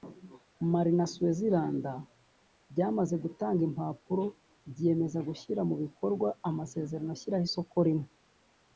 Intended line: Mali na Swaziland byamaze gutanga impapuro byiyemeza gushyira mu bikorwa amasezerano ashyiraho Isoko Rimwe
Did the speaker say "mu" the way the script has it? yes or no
yes